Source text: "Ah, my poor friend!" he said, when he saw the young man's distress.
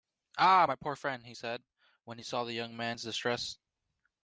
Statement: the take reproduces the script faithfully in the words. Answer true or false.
true